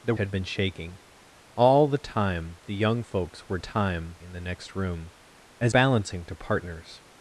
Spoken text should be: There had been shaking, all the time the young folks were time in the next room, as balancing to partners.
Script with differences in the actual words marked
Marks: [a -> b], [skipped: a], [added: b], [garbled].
There had been shaking, all the time the young folks were time in the next room, as balancing to partners.